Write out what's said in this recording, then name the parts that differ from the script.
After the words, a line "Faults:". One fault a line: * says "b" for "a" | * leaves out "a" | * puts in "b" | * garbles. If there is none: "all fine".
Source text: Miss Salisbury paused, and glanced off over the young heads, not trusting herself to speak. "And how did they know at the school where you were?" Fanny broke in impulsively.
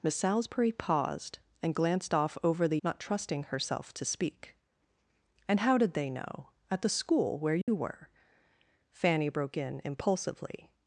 Miss Salisbury paused, and glanced off over the not trusting herself to speak. "And how did they know at the school where you were?" Fanny broke in impulsively.
Faults:
* leaves out "young heads"